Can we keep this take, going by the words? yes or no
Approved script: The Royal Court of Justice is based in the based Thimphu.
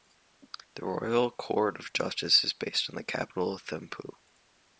no